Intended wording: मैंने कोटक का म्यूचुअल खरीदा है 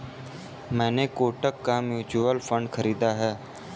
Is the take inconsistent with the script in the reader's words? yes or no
yes